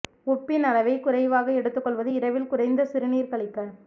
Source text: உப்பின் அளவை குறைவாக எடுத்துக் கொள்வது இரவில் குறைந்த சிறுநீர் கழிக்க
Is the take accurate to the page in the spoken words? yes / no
yes